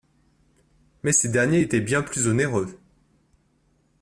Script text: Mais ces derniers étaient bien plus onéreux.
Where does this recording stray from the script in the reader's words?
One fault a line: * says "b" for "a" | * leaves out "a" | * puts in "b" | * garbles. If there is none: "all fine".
all fine